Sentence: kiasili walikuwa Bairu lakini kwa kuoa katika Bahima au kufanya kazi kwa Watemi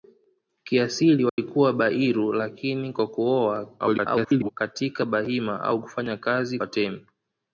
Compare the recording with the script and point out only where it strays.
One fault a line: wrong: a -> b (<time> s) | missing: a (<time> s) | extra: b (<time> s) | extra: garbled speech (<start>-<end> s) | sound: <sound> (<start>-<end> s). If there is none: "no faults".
sound: dropout (1.3-1.4 s)
extra: garbled speech (3.8-4.5 s)
missing: kwa (6.6 s)